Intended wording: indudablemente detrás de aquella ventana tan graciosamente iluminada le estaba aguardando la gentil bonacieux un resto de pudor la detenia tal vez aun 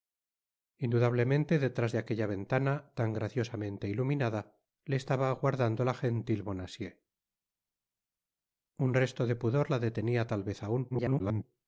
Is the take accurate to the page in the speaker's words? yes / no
no